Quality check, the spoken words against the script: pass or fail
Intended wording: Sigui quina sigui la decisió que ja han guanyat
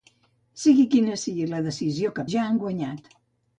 pass